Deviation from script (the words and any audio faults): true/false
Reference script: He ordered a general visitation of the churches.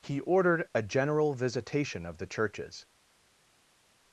false